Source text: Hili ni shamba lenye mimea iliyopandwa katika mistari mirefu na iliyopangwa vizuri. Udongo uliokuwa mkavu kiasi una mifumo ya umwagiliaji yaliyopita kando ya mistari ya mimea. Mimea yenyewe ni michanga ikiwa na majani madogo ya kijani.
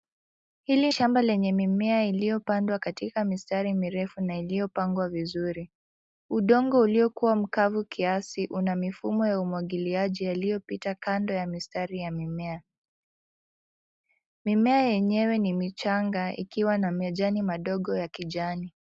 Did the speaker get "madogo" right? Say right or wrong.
right